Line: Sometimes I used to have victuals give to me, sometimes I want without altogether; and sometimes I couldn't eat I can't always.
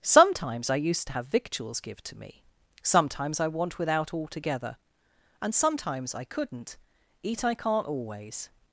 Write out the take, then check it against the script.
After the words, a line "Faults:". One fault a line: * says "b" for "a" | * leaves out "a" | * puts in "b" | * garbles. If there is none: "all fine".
Sometimes I used to have victuals give to me, sometimes I want without altogether; and sometimes I couldn't eat I can't always.
Faults:
all fine